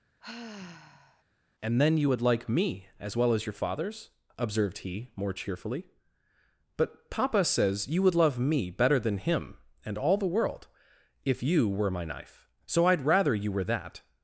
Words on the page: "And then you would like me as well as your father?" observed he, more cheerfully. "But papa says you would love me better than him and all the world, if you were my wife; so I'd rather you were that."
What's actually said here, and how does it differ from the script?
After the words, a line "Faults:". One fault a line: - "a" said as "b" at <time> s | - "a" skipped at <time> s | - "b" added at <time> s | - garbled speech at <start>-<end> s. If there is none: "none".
"And then you would like me as well as your fathers?" observed he, more cheerfully. "But papa says you would love me better than him and all the world, if you were my knife; so I'd rather you were that."
Faults:
- "father" said as "fathers" at 3.5 s
- "wife" said as "knife" at 12.0 s